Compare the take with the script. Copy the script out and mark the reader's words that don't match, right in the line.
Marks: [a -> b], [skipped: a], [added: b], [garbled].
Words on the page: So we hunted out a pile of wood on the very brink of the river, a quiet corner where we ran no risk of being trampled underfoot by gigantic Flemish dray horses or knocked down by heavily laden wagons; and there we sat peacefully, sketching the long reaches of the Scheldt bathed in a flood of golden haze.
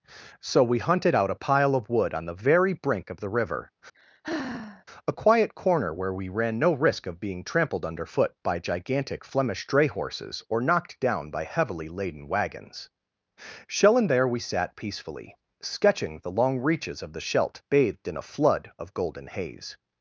So we hunted out a pile of wood on the very brink of the river, a quiet corner where we ran no risk of being trampled underfoot by gigantic Flemish dray horses or knocked down by heavily laden wagons; [added: shell] and there we sat peacefully, sketching the long reaches of the Scheldt bathed in a flood of golden haze.